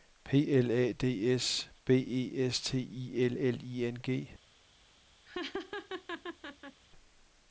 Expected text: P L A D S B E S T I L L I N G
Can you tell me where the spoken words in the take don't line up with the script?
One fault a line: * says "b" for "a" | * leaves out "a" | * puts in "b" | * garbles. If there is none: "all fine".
all fine